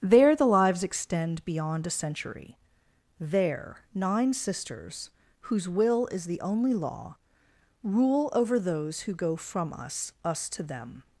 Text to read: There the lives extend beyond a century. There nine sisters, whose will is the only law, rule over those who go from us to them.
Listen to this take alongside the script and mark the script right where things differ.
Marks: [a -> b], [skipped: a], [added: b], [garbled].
There the lives extend beyond a century. There nine sisters, whose will is the only law, rule over those who go from us [added: us] to them.